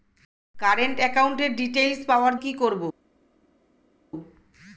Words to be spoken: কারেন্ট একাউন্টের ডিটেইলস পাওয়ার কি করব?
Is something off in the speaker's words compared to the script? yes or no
no